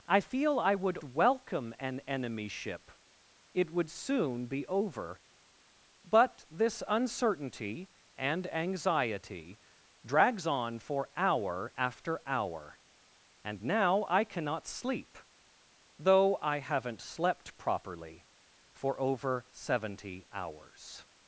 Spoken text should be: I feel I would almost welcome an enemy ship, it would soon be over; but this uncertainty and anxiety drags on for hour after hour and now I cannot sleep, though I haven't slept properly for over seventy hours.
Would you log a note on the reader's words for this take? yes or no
yes